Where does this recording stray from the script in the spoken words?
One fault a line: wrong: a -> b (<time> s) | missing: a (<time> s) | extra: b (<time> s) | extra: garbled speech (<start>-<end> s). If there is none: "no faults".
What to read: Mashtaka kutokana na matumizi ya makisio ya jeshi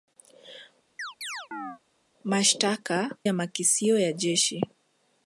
missing: kutokana na matumizi (3.1 s)